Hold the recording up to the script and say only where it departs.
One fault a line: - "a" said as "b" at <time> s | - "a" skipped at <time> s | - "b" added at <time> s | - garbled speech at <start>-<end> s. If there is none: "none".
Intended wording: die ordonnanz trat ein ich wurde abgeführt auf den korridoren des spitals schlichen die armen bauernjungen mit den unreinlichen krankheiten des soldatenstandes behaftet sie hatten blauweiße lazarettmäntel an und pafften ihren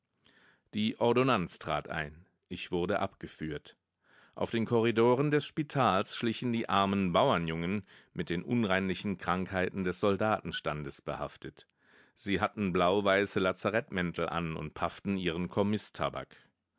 none